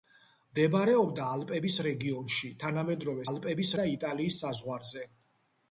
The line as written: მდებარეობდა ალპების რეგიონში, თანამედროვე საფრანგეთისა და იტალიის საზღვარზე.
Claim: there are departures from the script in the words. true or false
true